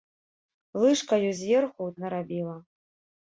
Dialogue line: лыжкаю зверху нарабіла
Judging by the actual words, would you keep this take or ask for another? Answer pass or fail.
pass